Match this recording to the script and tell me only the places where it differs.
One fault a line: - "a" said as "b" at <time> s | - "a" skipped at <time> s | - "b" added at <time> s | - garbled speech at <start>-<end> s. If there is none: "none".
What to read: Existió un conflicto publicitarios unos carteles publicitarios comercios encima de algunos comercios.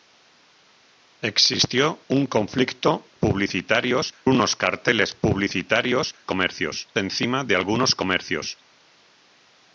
none